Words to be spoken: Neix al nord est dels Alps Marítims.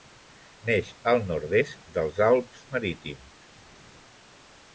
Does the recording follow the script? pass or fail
pass